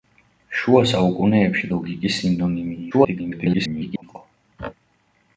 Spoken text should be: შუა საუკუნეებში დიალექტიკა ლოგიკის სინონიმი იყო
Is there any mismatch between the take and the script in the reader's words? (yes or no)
yes